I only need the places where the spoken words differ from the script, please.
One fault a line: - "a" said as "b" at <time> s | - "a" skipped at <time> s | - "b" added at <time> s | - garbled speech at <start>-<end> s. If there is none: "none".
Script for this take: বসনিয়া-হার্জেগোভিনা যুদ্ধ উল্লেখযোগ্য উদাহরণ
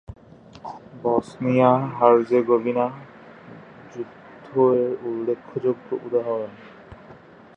- "এর" added at 4.8 s